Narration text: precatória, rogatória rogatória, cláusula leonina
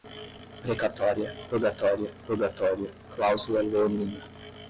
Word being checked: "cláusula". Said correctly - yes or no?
yes